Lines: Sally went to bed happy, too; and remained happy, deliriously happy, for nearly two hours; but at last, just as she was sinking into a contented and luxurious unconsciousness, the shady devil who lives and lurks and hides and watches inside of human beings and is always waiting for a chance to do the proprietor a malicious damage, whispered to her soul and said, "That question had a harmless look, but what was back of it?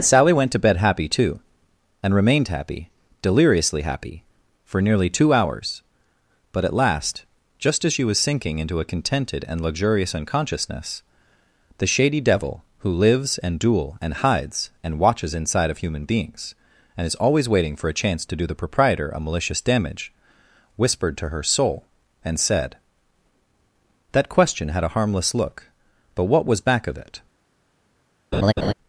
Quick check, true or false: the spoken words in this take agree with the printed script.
false